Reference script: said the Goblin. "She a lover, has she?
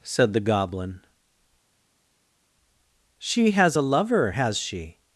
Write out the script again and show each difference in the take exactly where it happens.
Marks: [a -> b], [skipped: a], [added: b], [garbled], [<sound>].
said the Goblin. "She [added: has] a lover, has she?